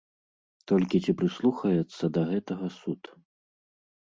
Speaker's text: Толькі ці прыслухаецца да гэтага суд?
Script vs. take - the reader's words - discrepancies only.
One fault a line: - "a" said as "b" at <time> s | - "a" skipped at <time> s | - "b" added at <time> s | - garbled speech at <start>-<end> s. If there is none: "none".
none